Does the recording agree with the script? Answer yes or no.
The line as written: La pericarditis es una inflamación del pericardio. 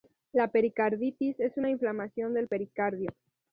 yes